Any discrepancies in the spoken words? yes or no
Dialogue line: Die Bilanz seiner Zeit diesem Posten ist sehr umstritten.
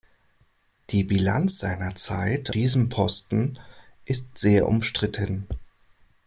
no